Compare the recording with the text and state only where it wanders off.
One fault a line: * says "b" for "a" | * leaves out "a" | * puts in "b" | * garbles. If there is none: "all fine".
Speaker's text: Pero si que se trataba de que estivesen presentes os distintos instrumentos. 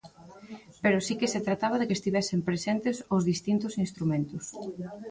all fine